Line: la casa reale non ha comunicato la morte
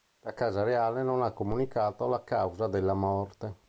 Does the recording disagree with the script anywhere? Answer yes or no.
yes